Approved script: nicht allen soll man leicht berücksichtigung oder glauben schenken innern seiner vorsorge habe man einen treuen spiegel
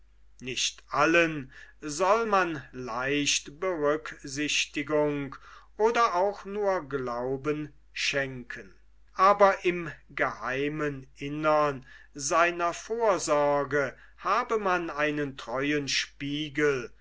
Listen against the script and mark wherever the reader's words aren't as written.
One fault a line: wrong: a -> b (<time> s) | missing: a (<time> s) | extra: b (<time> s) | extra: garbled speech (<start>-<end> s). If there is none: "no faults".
extra: auch nur (6.1 s)
extra: aber im geheimen (9.1 s)